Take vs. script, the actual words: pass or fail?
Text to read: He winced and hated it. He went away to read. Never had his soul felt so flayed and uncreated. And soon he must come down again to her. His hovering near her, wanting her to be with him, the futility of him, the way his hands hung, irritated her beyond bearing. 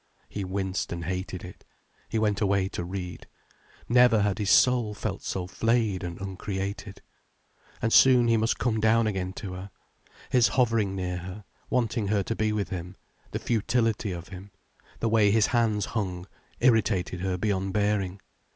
pass